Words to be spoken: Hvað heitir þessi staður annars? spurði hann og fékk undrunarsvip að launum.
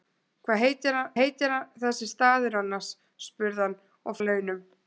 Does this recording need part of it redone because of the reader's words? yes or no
yes